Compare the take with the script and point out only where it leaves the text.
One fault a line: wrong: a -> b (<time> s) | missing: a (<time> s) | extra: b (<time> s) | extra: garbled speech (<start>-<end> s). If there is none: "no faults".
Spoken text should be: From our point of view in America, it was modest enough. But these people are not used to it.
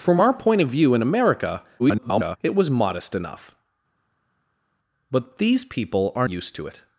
extra: garbled speech (1.8-2.4 s)
missing: not (6.3 s)